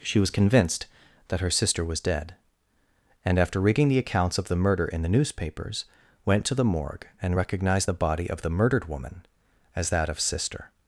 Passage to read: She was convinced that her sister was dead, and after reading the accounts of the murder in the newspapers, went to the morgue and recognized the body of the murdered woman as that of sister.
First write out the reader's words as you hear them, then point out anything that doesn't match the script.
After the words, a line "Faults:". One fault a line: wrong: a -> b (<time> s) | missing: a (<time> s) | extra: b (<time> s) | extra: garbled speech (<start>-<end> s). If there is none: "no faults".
She was convinced that her sister was dead, and after reading the accounts of the murder in the newspapers, went to the morgue and recognized the body of the murdered woman as that of sister.
Faults:
no faults